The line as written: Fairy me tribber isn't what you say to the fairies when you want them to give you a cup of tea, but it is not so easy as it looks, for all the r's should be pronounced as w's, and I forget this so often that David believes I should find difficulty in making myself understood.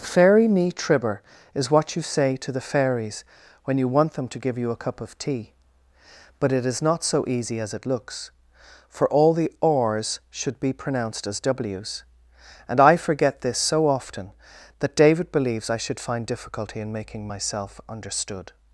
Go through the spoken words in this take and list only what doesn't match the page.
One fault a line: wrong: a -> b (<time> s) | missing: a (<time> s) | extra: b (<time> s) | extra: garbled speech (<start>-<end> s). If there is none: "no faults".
wrong: isn't -> is (1.5 s)